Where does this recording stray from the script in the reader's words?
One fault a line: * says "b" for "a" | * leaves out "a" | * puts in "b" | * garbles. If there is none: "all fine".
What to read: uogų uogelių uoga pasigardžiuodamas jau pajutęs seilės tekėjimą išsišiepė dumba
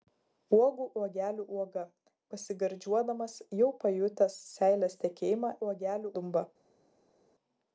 * says "uogelių" for "išsišiepė"